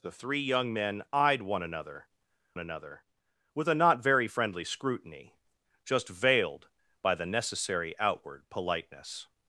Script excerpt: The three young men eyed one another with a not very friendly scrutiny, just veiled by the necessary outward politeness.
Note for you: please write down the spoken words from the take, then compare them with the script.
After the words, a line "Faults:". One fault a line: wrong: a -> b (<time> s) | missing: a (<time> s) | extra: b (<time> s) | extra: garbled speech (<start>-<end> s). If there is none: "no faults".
The three young men eyed one another another with a not very friendly scrutiny, just veiled by the necessary outward politeness.
Faults:
extra: another (2.6 s)